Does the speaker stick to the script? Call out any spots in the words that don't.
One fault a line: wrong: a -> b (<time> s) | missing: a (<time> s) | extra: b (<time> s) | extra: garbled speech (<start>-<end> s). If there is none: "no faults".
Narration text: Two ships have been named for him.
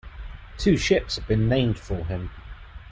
no faults